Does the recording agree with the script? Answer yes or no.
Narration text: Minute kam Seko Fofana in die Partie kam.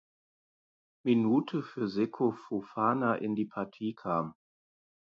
no